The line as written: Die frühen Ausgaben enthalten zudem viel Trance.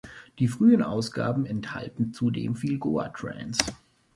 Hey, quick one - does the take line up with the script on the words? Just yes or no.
no